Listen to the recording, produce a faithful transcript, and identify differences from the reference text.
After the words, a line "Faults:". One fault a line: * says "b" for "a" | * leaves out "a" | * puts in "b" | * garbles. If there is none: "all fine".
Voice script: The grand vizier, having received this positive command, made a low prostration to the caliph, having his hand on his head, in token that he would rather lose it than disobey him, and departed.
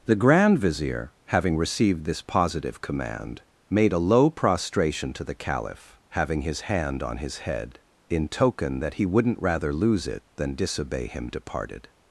The grand vizier, having received this positive command, made a low prostration to the caliph, having his hand on his head, in token that he wouldn't rather lose it than disobey him, departed.
Faults:
* says "wouldn't" for "would"
* leaves out "and"